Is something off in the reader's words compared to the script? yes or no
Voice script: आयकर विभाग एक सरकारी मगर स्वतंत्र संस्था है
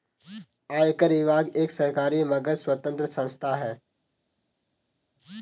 no